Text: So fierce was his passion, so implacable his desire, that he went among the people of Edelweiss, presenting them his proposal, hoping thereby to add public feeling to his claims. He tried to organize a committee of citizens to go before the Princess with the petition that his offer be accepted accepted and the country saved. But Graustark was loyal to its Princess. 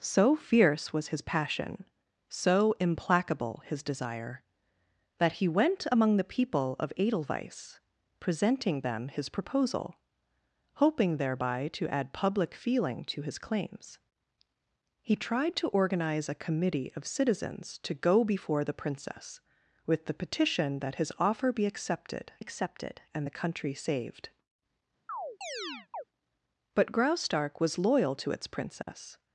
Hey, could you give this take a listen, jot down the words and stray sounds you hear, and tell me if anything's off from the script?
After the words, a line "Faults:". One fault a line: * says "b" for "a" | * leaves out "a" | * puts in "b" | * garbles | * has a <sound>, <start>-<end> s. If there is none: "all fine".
So fierce was his passion, so implacable his desire, that he went among the people of Edelweiss, presenting them his proposal, hoping thereby to add public feeling to his claims. He tried to organize a committee of citizens to go before the Princess with the petition that his offer be accepted accepted and the country saved. But Graustark was loyal to its Princess.
Faults:
* has a chirp, 25.1-26.0 s
* has a dropout, 28.8-28.9 s